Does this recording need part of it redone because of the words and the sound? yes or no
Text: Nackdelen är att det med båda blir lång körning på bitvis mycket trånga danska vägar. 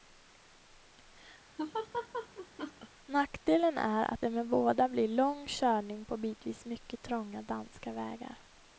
yes